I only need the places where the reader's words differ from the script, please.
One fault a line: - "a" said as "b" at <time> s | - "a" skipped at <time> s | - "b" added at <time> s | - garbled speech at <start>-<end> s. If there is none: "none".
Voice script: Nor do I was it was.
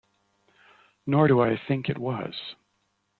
- "was" said as "think" at 1.7 s